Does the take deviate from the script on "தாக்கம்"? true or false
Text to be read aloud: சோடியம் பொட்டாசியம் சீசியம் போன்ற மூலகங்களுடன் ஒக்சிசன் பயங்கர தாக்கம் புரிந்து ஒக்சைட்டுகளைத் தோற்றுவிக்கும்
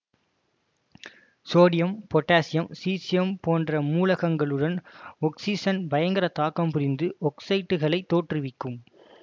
false